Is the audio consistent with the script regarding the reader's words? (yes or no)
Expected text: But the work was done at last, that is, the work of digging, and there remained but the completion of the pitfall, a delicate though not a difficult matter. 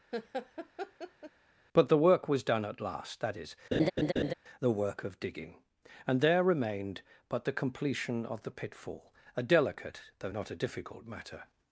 yes